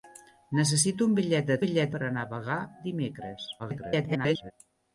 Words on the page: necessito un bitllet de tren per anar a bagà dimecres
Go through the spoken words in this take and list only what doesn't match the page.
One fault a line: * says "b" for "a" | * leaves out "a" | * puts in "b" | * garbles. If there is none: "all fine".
* says "bitllet" for "tren"
* garbles